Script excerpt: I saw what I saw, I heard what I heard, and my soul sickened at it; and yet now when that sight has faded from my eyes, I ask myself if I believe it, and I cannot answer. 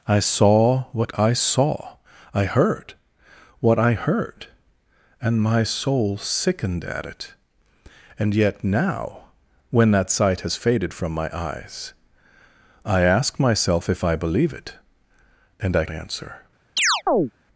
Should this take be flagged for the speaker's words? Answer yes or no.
yes